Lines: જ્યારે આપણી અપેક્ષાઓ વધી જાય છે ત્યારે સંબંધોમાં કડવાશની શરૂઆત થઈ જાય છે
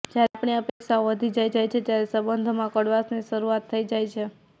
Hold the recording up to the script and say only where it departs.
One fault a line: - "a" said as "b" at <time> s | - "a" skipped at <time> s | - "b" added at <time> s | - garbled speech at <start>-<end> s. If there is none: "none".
- "જાય" added at 1.5 s